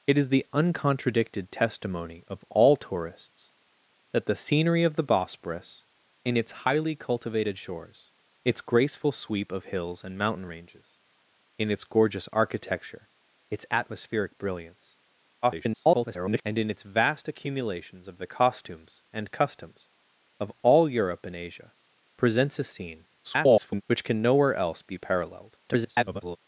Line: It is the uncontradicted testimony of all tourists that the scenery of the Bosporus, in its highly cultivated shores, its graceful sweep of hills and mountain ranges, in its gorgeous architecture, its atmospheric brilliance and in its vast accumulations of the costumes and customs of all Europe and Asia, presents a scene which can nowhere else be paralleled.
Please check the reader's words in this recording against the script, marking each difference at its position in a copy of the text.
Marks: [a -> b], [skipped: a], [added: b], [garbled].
It is the uncontradicted testimony of all tourists that the scenery of the Bosporus, in its highly cultivated shores, its graceful sweep of hills and mountain ranges, in its gorgeous architecture, its atmospheric brilliance [garbled] and in its vast accumulations of the costumes and customs of all Europe and Asia, presents a scene [garbled] which can nowhere else be paralleled. [garbled]